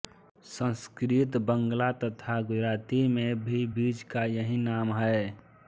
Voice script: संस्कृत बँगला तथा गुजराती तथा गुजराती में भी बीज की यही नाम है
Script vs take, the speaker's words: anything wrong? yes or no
yes